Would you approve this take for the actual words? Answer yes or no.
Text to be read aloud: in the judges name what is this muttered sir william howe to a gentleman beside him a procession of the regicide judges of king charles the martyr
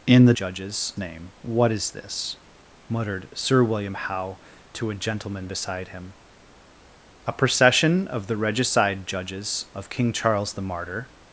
yes